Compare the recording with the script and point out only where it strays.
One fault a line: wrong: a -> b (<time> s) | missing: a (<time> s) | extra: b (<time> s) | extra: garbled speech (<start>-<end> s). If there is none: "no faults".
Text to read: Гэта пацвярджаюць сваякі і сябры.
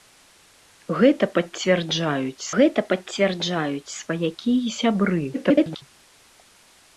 extra: гэта пацвярджаюць (2.6 s)
extra: garbled speech (5.3-5.8 s)